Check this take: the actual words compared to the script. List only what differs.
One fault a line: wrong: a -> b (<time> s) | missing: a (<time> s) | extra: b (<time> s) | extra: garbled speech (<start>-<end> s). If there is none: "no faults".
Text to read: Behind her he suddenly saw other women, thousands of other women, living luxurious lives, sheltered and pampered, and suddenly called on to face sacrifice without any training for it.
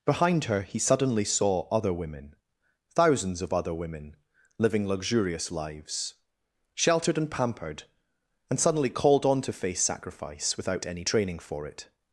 no faults